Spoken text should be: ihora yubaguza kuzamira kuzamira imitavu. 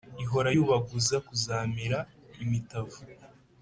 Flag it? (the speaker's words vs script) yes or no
yes